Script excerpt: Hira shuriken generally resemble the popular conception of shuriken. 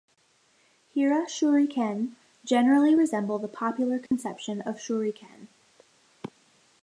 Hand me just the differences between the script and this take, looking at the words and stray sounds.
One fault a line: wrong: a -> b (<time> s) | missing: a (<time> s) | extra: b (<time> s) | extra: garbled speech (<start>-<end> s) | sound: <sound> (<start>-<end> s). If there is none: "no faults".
sound: dropout (4.1-4.1 s)